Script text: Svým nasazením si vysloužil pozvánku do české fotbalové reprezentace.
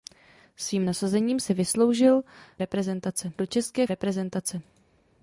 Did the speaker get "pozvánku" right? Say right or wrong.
wrong